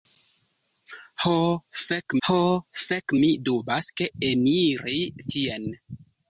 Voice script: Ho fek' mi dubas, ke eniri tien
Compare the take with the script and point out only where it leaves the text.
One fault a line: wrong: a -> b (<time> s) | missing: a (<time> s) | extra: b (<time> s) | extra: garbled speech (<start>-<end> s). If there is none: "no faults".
extra: ho fek (2.3 s)